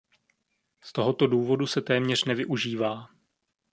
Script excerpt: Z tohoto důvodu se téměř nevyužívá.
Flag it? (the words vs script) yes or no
no